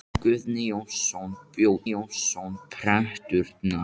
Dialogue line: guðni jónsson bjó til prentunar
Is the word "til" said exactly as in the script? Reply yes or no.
no